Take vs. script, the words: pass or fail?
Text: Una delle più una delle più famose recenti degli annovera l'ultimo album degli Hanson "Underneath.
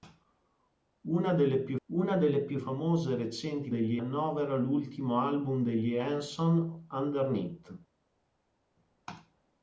pass